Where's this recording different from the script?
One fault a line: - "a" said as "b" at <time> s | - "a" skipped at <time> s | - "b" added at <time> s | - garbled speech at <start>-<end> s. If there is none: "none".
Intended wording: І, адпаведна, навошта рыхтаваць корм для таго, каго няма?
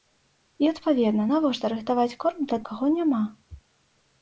- "таго" skipped at 2.6 s